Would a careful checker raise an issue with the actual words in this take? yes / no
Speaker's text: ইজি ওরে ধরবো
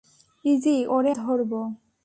no